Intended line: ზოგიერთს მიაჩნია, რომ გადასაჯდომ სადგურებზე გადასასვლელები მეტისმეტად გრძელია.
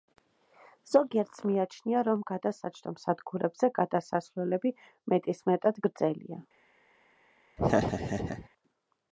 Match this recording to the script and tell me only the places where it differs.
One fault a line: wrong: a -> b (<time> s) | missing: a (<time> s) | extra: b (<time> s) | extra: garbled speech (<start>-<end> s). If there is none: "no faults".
no faults